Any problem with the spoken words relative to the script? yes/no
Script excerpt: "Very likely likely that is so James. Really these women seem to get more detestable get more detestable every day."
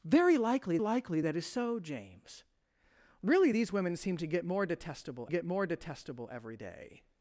no